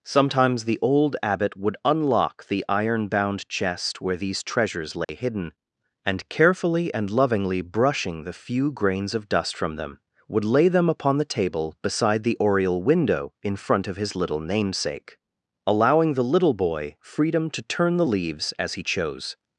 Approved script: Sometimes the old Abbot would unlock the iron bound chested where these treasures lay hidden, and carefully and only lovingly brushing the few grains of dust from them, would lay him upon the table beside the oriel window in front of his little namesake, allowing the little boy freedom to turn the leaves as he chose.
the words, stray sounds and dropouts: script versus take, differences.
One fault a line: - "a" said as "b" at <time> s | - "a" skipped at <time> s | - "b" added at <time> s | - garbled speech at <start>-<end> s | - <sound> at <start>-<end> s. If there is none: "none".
- "chested" said as "chest" at 3.5 s
- dropout at 5.0-5.1 s
- "only" skipped at 7.1 s
- "him" said as "them" at 10.7 s